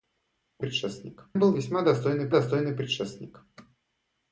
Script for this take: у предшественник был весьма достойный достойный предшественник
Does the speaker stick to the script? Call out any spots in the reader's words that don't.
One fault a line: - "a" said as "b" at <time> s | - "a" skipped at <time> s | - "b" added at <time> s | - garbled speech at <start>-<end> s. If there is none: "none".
none